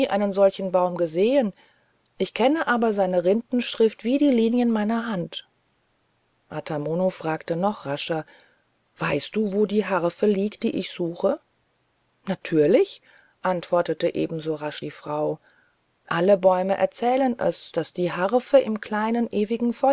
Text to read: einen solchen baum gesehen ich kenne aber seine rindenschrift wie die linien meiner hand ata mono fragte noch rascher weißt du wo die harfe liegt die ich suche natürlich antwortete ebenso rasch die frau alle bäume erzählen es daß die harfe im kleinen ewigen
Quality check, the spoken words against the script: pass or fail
pass